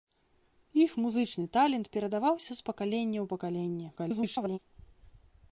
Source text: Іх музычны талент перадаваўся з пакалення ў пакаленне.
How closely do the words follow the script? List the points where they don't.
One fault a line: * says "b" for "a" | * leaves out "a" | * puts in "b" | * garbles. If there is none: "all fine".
* garbles